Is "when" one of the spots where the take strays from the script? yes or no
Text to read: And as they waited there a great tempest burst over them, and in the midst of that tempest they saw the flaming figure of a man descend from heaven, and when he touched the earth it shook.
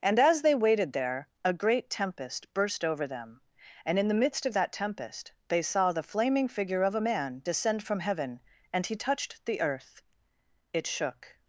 yes